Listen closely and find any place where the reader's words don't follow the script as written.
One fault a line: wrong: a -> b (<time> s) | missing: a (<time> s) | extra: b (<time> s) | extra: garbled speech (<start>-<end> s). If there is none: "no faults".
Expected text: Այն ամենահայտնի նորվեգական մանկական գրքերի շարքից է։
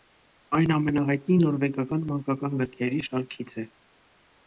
no faults